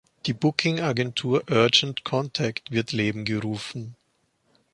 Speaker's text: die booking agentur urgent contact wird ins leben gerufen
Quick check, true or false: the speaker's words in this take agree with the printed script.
false